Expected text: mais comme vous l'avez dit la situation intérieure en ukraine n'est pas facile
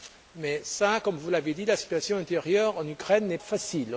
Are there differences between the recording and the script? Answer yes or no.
yes